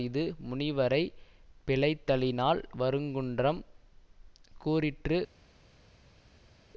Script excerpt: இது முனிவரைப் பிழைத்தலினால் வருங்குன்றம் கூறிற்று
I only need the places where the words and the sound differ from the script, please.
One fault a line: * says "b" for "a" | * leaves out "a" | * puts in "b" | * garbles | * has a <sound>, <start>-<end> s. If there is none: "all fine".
all fine